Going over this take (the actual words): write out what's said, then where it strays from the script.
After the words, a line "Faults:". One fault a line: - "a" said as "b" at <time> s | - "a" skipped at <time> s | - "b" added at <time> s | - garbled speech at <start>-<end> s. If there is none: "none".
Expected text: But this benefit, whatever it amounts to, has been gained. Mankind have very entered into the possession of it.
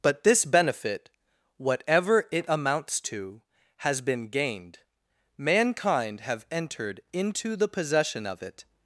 But this benefit, whatever it amounts to, has been gained. Mankind have entered into the possession of it.
Faults:
- "very" skipped at 6.5 s